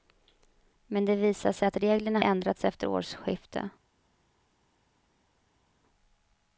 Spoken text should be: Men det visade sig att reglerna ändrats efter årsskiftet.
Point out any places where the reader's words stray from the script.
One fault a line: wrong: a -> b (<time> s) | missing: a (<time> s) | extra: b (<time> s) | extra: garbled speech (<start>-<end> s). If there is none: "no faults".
no faults